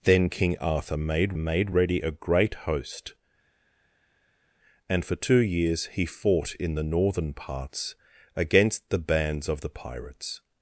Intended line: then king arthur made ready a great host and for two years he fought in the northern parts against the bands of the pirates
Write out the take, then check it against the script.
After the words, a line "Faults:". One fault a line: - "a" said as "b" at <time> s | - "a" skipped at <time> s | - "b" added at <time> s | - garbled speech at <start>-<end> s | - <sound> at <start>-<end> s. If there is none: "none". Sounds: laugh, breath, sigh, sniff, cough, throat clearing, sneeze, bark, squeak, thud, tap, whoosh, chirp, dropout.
then king arthur made made ready a great host and for two years he fought in the northern parts against the bands of the pirates
Faults:
- "made" added at 1.4 s